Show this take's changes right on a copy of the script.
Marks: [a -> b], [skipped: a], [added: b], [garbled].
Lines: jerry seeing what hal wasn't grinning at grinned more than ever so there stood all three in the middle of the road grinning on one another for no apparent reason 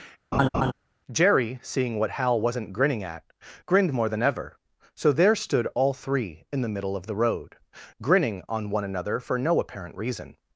jerry seeing what hal wasn't grinning at grinned more than ever so there stood all three in the middle of the road grinning on one another for no apparent reason